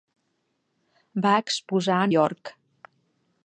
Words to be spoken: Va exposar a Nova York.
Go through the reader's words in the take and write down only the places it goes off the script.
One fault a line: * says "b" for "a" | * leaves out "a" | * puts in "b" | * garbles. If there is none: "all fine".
* leaves out "Nova"